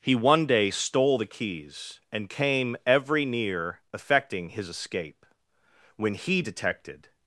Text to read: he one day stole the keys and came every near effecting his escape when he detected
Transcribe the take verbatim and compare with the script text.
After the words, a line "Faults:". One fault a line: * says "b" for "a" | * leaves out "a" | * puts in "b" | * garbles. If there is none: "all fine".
he one day stole the keys and came every near effecting his escape when he detected
Faults:
all fine